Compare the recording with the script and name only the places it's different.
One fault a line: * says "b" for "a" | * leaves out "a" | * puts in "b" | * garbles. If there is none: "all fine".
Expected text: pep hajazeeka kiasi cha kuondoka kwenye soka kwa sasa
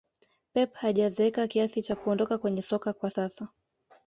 all fine